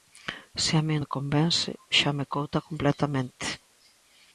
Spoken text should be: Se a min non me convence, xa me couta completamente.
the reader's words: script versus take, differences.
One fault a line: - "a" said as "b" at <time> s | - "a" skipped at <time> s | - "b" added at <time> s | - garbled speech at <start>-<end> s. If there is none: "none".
- "non" skipped at 1.0 s